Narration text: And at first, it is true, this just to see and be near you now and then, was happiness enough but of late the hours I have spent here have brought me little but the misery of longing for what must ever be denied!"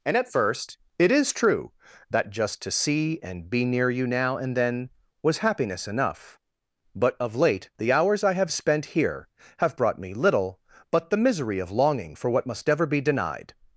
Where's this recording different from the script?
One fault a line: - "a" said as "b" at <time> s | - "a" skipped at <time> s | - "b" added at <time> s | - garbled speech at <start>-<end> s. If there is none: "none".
- "this" said as "that" at 2.1 s